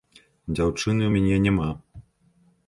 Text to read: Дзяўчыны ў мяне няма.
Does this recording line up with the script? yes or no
yes